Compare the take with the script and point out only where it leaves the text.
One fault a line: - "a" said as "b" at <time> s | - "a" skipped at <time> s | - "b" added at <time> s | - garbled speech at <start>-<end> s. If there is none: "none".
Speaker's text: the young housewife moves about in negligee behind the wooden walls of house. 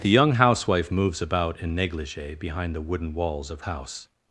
none